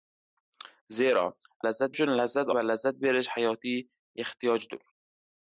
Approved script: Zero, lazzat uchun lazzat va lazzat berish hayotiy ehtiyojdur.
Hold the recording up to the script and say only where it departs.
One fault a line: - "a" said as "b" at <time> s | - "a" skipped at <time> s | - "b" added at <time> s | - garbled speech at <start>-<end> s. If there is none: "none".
none